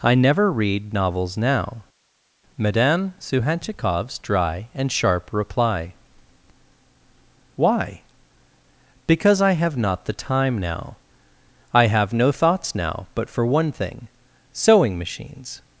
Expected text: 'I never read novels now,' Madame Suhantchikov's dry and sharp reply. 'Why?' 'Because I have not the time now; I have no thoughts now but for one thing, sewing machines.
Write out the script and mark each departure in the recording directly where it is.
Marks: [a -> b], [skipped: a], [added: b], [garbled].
'I never read novels now,' Madame Suhantchikov's dry and sharp reply. 'Why?' 'Because I have not the time now; I have no thoughts now but for one thing, sewing machines.